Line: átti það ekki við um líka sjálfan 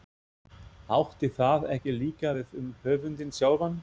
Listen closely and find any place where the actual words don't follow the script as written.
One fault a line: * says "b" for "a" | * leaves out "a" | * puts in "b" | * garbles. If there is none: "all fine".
* puts in "líka"
* says "höfundinn" for "líka"